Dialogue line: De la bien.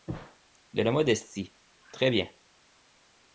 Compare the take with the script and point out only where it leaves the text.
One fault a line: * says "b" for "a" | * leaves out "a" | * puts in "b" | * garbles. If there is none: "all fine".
* puts in "modestie très"